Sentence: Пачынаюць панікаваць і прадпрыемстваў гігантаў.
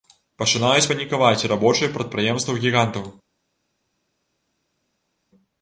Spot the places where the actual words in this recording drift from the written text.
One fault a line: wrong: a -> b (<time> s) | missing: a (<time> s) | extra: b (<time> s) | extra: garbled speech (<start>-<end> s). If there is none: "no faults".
extra: рабочыя (1.5 s)